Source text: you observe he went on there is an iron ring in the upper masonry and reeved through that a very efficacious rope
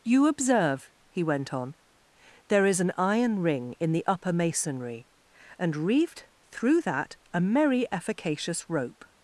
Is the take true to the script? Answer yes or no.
no